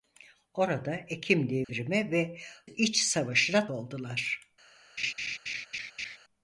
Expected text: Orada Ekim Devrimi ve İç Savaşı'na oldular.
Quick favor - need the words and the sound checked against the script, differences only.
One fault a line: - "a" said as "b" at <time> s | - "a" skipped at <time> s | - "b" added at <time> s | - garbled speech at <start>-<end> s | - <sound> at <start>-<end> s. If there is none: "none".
- dropout at 1.6-1.7 s
- laugh at 5.0-6.2 s